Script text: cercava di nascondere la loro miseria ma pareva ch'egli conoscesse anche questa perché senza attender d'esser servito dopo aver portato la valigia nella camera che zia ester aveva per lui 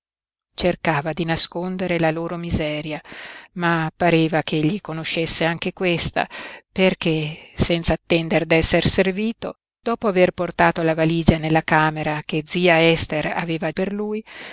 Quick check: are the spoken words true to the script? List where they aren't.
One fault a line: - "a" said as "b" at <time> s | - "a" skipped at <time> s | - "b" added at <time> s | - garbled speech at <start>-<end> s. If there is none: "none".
none